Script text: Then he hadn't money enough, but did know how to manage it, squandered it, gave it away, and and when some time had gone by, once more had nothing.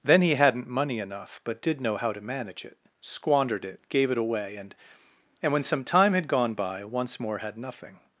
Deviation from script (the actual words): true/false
false